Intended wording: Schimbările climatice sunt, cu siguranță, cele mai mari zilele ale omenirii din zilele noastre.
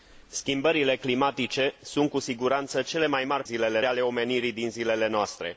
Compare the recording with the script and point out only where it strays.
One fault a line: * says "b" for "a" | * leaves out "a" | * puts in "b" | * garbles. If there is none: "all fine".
all fine